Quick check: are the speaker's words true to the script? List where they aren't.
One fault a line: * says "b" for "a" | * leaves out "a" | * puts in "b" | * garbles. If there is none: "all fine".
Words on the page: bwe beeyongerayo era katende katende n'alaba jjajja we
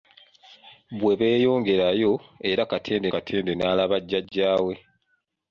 all fine